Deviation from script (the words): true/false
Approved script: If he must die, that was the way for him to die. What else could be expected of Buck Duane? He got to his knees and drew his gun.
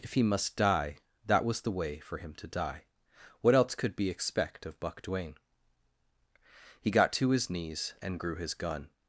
true